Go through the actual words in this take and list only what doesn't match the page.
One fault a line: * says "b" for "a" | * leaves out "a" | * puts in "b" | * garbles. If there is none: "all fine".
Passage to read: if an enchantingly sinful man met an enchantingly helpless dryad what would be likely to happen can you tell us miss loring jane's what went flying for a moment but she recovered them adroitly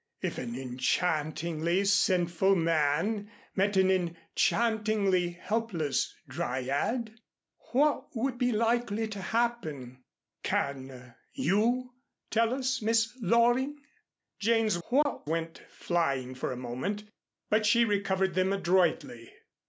all fine